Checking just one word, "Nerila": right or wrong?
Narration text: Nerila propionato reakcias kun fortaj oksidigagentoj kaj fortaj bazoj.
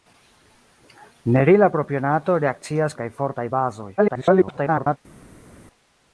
right